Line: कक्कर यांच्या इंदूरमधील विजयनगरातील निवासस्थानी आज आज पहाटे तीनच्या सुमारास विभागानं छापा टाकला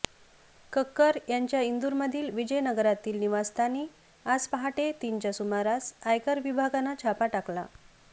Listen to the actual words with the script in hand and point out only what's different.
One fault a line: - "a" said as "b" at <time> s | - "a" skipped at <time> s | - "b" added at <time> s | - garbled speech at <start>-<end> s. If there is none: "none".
- "आज" skipped at 4.5 s
- "आयकर" added at 6.0 s